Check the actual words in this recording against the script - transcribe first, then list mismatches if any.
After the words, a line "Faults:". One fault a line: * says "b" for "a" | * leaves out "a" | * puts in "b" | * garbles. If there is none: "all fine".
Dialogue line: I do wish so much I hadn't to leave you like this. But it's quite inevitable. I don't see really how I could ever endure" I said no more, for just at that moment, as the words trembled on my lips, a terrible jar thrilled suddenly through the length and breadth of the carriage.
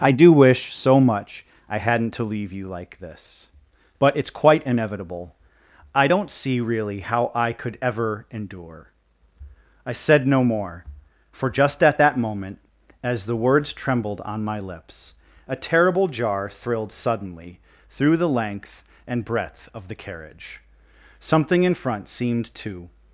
I do wish so much I hadn't to leave you like this. But it's quite inevitable. I don't see really how I could ever endure" I said no more, for just at that moment, as the words trembled on my lips, a terrible jar thrilled suddenly through the length and breadth of the carriage. Something in front seemed to
Faults:
* puts in "Something in front seemed to"